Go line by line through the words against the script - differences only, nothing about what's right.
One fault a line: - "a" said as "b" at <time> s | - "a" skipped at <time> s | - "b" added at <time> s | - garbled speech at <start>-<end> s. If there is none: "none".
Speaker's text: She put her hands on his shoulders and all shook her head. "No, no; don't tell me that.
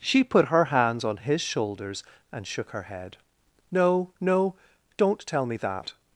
- "all" skipped at 2.5 s